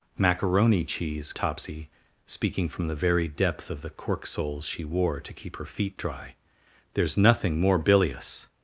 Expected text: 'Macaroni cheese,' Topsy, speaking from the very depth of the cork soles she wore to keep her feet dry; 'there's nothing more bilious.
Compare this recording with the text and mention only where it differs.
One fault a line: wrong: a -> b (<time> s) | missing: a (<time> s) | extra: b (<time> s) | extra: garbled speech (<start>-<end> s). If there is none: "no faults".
no faults